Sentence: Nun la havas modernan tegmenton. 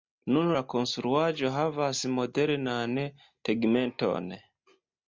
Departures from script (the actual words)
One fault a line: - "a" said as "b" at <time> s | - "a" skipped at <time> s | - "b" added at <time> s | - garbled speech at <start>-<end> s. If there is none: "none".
- "konstruaĵo" added at 0.7 s